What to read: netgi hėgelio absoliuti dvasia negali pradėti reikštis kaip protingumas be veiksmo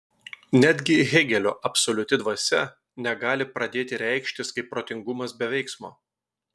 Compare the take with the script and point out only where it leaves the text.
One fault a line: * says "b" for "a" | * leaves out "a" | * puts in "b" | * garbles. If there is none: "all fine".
all fine